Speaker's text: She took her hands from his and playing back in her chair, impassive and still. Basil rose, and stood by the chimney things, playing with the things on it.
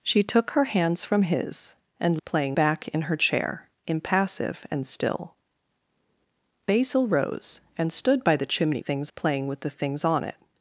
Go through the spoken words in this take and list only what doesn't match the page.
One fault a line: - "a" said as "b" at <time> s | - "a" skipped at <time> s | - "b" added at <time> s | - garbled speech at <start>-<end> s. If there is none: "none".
none